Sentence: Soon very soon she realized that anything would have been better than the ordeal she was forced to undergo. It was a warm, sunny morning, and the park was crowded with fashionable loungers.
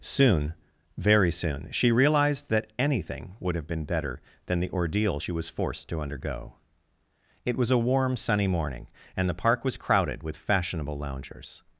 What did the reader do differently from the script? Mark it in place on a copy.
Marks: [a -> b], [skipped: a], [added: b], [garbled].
Soon very soon she realized that anything would have been better than the ordeal she was forced to undergo. It was a warm, sunny morning, and the park was crowded with fashionable loungers.